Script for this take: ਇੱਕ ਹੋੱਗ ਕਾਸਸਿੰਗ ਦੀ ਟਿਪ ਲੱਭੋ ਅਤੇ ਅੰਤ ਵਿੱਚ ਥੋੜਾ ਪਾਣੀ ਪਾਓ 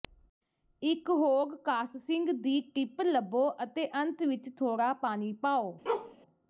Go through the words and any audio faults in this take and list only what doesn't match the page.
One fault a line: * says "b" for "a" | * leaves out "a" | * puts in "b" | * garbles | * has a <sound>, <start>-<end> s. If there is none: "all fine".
* has a bark, 5.9-6.2 s